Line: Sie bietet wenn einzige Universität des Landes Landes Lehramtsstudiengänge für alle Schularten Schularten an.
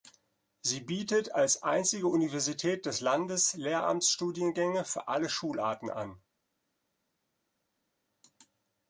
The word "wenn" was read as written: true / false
false